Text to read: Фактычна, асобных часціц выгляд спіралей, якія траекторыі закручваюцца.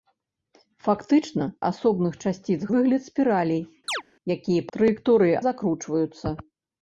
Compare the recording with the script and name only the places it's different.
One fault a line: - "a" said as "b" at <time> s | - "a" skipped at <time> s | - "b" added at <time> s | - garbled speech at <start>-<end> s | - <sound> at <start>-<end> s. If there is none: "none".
- chirp at 3.9-4.0 s